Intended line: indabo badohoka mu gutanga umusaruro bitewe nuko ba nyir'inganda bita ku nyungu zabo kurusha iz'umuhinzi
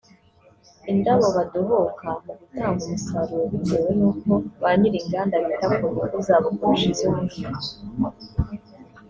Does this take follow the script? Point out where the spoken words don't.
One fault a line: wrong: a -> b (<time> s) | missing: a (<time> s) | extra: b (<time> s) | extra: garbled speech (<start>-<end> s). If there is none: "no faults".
no faults